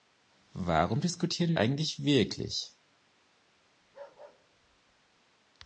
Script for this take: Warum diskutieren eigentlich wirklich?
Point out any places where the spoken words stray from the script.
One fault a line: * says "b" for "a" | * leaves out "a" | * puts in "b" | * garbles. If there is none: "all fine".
all fine